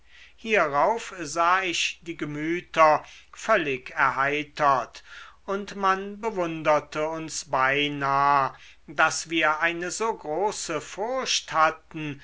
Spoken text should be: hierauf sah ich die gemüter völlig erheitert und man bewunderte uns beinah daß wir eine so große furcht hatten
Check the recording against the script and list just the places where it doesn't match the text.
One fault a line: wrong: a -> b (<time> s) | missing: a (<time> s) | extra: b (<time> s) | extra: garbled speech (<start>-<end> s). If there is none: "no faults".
no faults